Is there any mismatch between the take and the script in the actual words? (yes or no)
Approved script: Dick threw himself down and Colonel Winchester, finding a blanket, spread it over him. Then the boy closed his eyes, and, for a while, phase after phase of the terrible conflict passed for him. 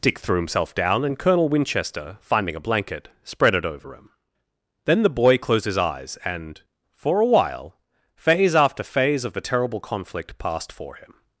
no